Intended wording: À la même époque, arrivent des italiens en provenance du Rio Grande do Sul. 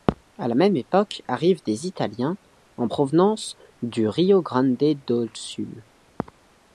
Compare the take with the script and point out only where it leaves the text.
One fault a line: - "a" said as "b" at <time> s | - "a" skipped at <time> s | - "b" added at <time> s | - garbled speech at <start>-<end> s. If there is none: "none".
none